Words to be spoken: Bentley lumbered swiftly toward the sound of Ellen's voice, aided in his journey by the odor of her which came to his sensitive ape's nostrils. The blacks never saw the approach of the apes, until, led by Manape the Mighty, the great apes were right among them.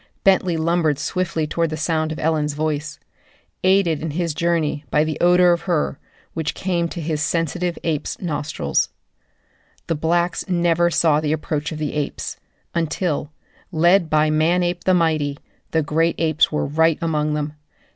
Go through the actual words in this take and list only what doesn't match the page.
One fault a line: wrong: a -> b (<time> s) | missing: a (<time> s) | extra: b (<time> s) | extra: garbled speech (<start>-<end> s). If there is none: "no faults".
no faults